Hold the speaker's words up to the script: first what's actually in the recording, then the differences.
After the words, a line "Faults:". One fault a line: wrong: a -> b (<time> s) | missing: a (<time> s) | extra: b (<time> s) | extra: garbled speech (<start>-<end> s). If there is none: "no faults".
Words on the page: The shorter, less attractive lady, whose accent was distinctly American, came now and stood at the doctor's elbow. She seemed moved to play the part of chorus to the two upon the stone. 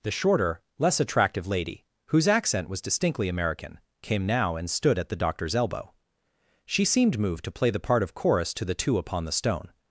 The shorter, less attractive lady, whose accent was distinctly American, came now and stood at the doctor's elbow. She seemed moved to play the part of chorus to the two upon the stone.
Faults:
no faults